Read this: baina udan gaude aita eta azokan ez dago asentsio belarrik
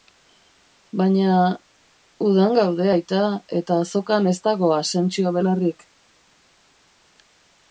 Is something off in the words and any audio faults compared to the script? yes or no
no